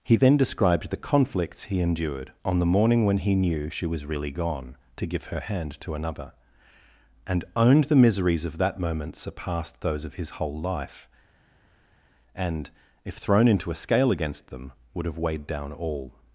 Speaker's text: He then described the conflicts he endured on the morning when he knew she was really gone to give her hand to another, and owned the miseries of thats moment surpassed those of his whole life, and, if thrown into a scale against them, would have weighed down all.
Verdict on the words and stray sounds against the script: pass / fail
fail